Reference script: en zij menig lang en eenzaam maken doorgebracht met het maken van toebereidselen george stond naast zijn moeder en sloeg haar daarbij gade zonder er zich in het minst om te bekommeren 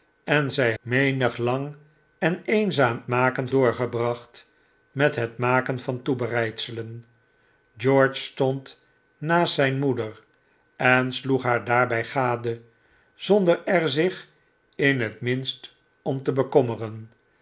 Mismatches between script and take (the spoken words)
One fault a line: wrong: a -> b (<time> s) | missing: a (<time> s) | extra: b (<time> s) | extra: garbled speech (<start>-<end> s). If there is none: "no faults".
no faults